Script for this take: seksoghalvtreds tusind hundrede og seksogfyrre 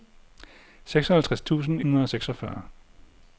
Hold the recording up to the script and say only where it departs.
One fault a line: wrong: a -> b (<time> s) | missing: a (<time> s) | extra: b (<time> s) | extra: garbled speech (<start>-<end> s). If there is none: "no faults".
no faults